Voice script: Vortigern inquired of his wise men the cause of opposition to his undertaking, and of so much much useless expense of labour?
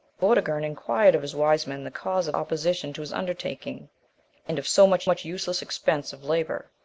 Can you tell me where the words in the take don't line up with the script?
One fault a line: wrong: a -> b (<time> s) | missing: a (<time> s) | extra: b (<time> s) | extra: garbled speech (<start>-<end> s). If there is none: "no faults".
no faults